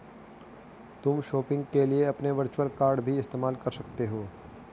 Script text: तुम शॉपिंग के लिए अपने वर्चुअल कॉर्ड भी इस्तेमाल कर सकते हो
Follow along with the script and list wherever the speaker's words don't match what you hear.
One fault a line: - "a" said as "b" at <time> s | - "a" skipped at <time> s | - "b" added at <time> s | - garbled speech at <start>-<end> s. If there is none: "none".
none